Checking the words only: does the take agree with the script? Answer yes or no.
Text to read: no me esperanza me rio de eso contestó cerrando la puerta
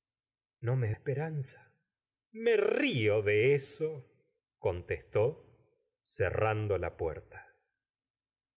yes